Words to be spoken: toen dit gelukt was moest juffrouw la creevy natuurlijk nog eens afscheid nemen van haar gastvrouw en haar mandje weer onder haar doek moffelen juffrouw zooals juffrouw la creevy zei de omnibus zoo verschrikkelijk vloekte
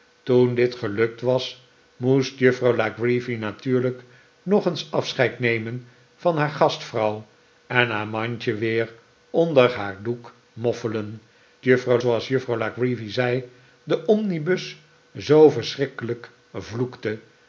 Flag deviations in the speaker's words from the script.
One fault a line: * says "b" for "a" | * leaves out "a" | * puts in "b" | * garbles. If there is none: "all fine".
all fine